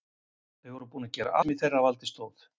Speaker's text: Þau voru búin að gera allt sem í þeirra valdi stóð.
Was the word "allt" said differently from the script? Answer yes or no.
yes